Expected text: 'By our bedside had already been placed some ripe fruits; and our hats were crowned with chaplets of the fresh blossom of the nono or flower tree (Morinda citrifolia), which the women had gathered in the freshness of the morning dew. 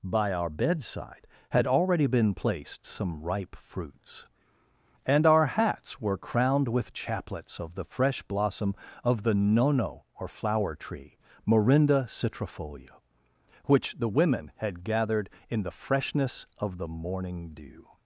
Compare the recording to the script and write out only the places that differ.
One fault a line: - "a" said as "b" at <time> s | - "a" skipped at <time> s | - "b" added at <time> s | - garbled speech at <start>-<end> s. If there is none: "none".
none